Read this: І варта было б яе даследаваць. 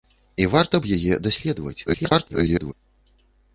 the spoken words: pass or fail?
fail